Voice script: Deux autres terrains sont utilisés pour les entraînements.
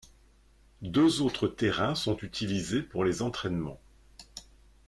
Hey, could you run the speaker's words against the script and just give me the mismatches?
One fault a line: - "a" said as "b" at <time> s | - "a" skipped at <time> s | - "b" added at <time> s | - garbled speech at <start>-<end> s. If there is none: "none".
none